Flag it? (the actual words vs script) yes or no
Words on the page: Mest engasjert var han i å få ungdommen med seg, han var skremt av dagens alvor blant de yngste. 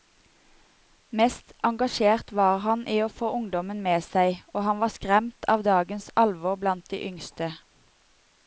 yes